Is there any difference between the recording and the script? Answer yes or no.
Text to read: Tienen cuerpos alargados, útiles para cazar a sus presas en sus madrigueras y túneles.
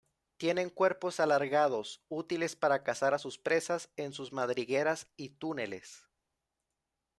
no